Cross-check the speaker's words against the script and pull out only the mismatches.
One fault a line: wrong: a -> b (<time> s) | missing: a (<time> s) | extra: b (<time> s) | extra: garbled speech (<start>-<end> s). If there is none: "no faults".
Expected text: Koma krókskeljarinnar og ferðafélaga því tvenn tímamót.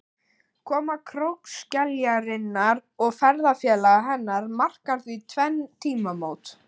extra: hennar markar (4.1 s)